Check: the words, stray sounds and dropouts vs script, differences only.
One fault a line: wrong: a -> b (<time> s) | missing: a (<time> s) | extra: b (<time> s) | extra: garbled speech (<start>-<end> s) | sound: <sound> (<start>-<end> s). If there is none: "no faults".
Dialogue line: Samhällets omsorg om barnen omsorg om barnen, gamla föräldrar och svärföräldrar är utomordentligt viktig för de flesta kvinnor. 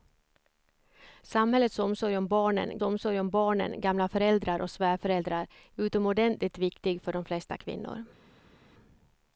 no faults